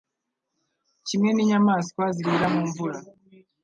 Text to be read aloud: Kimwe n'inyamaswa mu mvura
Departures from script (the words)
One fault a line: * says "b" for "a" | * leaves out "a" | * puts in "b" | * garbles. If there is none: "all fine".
* puts in "zirira"